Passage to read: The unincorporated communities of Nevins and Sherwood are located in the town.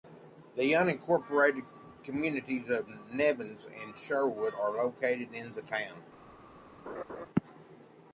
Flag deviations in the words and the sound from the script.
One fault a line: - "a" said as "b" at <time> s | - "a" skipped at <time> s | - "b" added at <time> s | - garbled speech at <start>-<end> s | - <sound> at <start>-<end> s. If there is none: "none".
- laugh at 6.9-7.3 s